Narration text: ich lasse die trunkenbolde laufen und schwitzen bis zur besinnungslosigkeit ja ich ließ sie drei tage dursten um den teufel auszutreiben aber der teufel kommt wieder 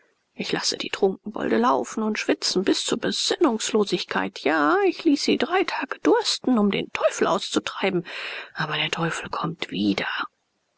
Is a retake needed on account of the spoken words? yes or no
no